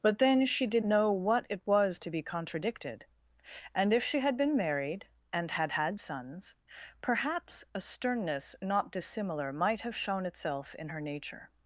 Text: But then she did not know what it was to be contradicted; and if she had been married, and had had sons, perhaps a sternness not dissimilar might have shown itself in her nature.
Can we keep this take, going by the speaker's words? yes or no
no